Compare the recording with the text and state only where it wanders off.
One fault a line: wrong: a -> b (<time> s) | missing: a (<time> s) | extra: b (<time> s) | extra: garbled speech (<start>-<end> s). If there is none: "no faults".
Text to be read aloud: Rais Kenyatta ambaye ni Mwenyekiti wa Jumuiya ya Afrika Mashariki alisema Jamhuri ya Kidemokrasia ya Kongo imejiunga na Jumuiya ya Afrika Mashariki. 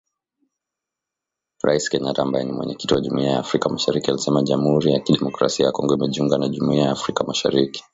no faults